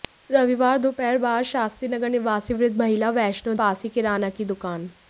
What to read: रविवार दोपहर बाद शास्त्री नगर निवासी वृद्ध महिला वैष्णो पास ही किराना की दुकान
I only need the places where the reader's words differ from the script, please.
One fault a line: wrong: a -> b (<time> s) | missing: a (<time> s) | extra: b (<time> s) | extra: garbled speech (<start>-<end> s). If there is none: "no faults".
no faults